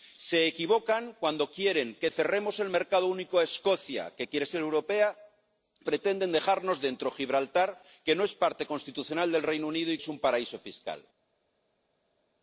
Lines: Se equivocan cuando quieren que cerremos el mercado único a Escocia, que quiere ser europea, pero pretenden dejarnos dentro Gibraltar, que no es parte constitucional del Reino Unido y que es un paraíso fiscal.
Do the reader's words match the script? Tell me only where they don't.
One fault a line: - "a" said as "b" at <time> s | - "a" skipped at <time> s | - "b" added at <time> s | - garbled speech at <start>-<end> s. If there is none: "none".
- "pero" skipped at 5.2 s
- "que" skipped at 10.0 s